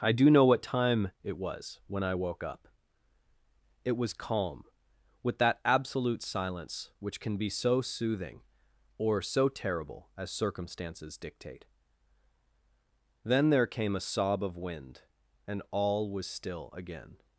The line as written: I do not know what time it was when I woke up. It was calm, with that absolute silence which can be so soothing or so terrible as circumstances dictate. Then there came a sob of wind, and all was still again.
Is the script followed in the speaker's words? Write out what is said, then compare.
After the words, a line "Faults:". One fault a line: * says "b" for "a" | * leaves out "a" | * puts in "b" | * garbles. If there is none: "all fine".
I do know what time it was when I woke up. It was calm, with that absolute silence which can be so soothing or so terrible as circumstances dictate. Then there came a sob of wind, and all was still again.
Faults:
* leaves out "not"